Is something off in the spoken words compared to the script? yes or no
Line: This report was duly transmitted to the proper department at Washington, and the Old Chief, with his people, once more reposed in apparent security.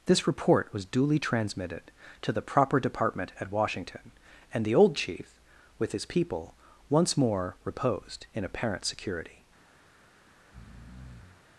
no